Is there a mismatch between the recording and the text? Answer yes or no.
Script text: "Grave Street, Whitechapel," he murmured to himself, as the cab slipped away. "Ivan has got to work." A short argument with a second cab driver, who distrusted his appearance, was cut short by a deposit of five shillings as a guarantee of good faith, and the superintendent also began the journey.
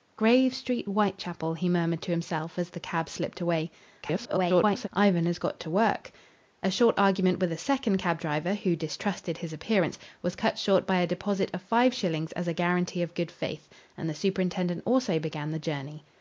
yes